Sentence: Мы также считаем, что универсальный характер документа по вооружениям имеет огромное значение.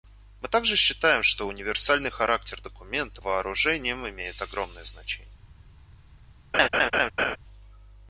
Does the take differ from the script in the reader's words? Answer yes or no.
yes